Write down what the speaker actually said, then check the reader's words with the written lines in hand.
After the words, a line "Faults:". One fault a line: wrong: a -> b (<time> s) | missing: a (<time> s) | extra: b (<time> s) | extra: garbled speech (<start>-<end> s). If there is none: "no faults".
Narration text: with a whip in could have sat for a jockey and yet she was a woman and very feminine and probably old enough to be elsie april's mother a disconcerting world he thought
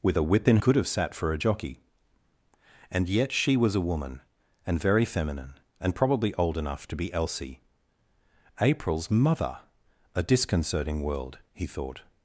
with a whip in could have sat for a jockey and yet she was a woman and very feminine and probably old enough to be elsie april's mother a disconcerting world he thought
Faults:
no faults